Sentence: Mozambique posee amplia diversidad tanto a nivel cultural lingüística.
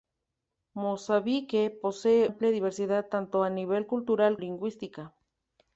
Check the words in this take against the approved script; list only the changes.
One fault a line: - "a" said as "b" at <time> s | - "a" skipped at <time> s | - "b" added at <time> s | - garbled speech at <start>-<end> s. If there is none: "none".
none